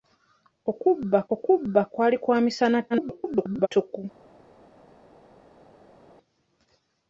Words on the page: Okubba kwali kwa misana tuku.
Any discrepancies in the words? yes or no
yes